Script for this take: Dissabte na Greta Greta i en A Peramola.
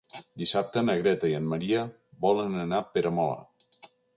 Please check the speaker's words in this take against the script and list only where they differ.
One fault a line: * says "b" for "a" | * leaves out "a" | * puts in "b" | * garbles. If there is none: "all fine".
* leaves out "Greta"
* puts in "Maria volen anar"